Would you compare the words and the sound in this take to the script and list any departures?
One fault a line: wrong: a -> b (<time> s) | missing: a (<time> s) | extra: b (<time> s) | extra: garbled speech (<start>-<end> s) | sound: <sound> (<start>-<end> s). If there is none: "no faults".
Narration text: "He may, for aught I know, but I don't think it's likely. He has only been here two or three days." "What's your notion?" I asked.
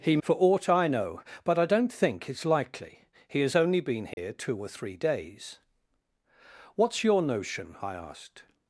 missing: may (0.2 s)
sound: dropout (4.1-4.2 s)